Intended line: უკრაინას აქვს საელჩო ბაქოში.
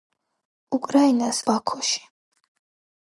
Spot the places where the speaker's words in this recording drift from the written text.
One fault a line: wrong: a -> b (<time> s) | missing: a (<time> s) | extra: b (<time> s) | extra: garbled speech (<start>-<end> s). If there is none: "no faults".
missing: აქვს საელჩო (1.4 s)